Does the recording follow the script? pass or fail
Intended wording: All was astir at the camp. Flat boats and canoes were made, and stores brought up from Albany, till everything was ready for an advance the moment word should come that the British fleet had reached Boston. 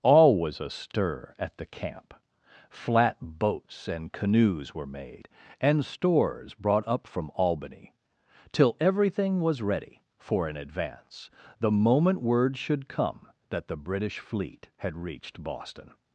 pass